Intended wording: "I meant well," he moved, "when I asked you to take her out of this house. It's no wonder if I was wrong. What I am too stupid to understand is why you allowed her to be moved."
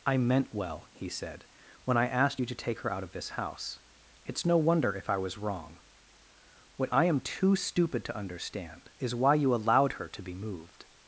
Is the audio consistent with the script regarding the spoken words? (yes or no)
no